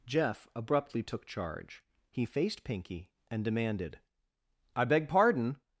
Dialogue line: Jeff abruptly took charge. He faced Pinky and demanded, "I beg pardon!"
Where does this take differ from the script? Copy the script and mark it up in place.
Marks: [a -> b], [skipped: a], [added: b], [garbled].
Jeff abruptly took charge. He faced Pinky and demanded, "I beg pardon!"